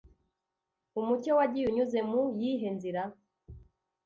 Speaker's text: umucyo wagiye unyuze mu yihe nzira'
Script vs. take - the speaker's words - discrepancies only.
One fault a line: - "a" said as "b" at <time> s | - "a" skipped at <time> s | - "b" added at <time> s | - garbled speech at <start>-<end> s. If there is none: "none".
none